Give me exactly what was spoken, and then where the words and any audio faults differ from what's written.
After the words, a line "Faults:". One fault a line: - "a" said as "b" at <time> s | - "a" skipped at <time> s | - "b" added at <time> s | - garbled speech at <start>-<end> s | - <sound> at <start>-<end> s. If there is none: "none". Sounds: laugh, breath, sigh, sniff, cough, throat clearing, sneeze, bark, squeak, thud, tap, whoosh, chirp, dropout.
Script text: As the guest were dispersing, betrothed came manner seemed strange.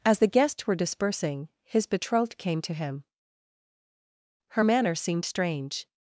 As the guests were dispersing, his betrothed came to him. Her manner seemed strange.
Faults:
- "guest" said as "guests" at 0.3 s
- "his" added at 1.6 s
- "to him Her" added at 2.6 s